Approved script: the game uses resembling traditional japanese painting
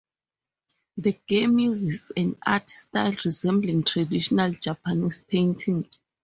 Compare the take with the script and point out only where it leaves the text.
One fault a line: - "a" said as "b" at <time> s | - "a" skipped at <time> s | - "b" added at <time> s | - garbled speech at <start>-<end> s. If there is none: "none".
- "an art style" added at 2.2 s